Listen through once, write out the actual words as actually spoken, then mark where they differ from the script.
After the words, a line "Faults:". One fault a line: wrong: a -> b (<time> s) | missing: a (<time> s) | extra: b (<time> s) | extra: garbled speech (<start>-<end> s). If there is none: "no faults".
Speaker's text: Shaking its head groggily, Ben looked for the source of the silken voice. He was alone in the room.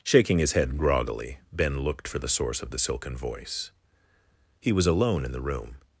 Shaking his head groggily, Ben looked for the source of the silken voice. He was alone in the room.
Faults:
wrong: its -> his (0.4 s)